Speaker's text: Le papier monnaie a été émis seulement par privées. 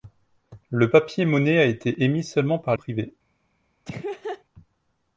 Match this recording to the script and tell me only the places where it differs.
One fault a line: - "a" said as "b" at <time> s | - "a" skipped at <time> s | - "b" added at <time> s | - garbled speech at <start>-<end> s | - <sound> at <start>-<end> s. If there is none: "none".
- laugh at 3.8-4.4 s